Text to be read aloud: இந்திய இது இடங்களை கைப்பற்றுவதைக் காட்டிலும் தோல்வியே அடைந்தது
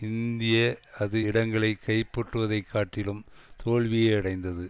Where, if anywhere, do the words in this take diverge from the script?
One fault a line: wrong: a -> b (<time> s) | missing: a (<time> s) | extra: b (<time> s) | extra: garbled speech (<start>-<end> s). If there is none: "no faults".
wrong: இது -> அது (1.0 s)